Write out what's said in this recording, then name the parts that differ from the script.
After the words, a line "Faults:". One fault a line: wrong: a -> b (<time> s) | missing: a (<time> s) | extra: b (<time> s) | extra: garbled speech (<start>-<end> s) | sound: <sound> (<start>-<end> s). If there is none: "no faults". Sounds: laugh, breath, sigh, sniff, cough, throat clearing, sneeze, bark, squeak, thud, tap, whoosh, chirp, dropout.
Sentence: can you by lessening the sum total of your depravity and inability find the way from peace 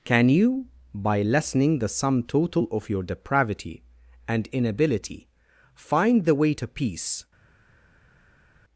can you by lessening the sum total of your depravity and inability find the way to peace
Faults:
wrong: from -> to (6.5 s)